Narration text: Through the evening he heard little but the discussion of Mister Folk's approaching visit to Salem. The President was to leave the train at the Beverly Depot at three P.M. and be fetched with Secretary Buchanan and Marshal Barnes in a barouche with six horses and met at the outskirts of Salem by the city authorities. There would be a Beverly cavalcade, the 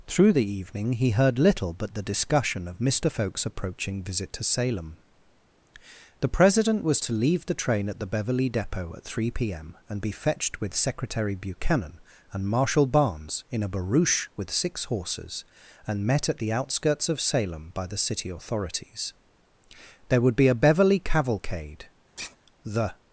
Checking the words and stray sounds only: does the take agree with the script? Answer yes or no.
no